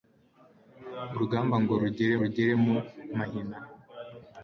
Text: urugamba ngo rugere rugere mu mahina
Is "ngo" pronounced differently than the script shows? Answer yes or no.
no